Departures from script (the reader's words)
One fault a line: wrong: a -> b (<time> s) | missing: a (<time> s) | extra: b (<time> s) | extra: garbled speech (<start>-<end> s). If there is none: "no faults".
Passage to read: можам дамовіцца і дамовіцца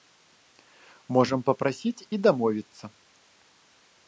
wrong: дамовіцца -> папрасіць (1.5 s)